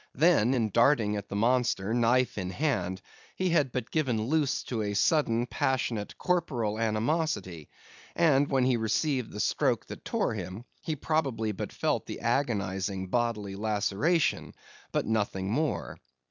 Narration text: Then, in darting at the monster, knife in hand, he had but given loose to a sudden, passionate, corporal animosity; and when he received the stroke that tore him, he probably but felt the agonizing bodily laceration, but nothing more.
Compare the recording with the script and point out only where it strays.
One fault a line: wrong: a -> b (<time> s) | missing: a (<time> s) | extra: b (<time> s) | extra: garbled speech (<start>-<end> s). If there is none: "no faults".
no faults